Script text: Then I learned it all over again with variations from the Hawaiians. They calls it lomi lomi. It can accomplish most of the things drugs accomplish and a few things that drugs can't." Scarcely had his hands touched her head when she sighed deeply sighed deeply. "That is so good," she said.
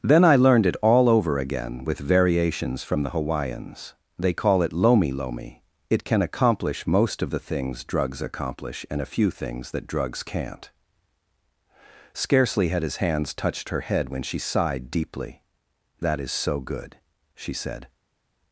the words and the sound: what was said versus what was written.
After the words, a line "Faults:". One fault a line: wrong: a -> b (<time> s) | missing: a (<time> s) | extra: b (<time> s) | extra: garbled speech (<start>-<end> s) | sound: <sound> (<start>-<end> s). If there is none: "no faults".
Then I learned it all over again with variations from the Hawaiians. They call it lomi lomi. It can accomplish most of the things drugs accomplish and a few things that drugs can't." Scarcely had his hands touched her head when she sighed deeply. "That is so good," she said.
Faults:
wrong: calls -> call (4.3 s)
missing: sighed deeply (15.4 s)